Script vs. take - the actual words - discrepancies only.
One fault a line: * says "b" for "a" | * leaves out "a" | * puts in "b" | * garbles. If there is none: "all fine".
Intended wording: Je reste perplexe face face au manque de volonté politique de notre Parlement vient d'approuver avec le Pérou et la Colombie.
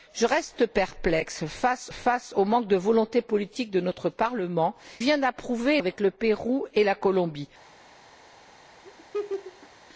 all fine